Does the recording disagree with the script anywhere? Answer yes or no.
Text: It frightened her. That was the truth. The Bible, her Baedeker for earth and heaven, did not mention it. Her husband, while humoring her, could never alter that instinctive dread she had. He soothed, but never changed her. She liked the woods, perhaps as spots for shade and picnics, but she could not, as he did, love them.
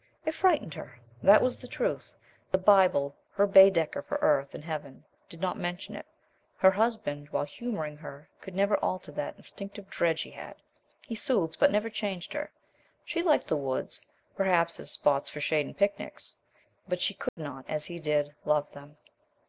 no